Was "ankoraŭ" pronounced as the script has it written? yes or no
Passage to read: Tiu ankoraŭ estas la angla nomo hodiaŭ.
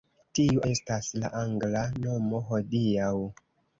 no